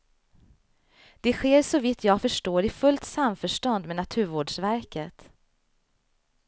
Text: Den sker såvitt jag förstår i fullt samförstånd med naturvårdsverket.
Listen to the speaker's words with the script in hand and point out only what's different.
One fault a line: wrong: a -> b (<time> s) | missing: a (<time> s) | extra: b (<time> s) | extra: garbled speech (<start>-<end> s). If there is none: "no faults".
wrong: Den -> Det (1.2 s)